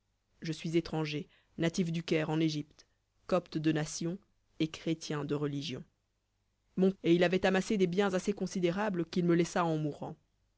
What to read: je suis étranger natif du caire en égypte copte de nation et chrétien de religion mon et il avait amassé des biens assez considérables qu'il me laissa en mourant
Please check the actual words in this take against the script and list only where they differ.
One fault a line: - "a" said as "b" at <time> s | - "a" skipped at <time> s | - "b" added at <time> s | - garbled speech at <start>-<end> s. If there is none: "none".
none